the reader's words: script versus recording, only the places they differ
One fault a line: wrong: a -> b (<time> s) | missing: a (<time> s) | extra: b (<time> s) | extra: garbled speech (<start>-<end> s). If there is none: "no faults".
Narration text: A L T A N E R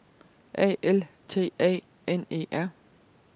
no faults